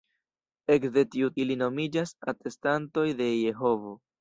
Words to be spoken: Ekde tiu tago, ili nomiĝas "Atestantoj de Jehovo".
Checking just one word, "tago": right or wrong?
wrong